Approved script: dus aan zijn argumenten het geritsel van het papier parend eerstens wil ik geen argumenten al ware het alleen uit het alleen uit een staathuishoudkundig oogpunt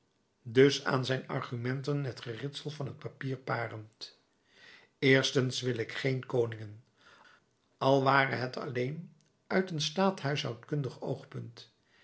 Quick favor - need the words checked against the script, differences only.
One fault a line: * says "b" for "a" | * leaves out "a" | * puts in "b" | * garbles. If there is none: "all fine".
* says "koningen" for "argumenten"
* leaves out "het alleen uit"